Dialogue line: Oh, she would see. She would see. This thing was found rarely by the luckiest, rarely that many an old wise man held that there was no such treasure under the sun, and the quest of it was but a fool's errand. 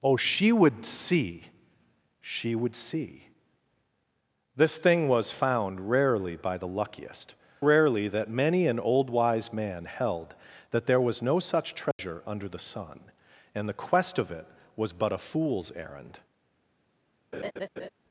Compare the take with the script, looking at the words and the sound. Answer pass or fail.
fail